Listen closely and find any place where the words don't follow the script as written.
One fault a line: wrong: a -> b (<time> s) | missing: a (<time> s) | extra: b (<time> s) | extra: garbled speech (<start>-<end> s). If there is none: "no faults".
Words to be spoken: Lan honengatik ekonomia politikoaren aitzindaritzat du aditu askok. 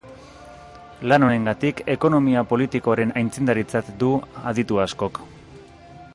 no faults